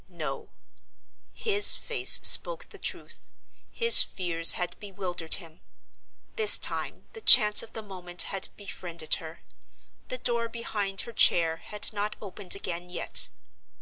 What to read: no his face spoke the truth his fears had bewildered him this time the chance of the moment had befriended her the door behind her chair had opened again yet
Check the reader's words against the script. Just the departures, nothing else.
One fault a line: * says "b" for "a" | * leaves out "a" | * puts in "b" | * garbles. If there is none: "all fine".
* puts in "not"